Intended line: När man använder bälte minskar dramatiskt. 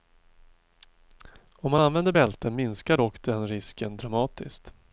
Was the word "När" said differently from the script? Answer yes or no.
yes